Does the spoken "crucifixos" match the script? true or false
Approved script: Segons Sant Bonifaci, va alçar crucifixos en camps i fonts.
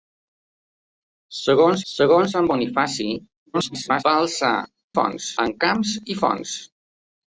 false